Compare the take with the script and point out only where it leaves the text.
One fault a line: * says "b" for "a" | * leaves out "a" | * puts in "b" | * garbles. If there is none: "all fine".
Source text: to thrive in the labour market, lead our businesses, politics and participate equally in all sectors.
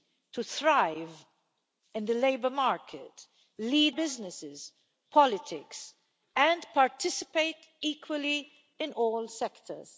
* leaves out "our"